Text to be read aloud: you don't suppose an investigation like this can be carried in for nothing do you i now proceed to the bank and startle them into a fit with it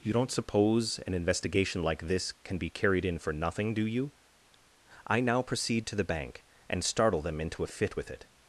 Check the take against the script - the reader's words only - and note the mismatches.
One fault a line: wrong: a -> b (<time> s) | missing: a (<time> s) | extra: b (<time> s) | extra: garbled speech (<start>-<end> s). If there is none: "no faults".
no faults